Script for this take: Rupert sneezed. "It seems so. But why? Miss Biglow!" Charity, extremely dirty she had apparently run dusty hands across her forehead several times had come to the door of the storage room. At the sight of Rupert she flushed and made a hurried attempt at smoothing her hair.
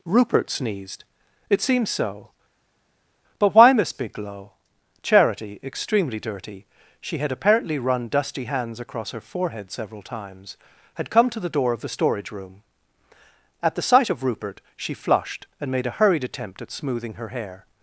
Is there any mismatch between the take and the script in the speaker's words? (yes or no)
no